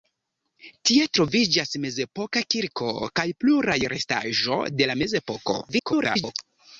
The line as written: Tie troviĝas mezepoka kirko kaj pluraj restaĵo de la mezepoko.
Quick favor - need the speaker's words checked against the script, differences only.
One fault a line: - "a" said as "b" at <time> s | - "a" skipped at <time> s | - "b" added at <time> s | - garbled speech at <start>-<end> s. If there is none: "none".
- garbled speech at 5.7-6.3 s